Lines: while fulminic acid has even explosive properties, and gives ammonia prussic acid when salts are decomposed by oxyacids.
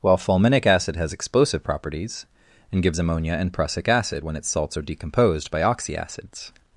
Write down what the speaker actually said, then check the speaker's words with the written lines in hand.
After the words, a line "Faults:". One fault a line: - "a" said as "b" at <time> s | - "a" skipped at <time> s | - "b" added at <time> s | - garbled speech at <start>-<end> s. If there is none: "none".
while fulminic acid has explosive properties, and gives ammonia and prussic acid when its salts are decomposed by oxyacids.
Faults:
- "even" skipped at 1.1 s
- "and" added at 3.3 s
- "its" added at 4.4 s